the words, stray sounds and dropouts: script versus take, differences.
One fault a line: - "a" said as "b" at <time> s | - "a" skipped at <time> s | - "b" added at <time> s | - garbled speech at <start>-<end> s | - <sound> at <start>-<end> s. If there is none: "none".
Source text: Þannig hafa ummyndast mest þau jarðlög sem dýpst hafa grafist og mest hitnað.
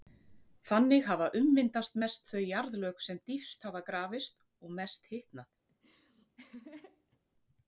- laugh at 5.7-7.2 s